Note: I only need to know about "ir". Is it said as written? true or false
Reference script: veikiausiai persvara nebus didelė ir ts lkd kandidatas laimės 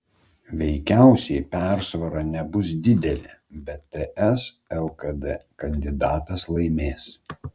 false